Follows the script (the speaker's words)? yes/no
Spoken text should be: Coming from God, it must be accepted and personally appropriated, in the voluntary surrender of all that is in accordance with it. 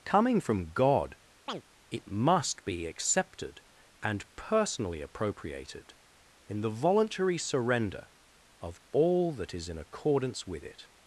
yes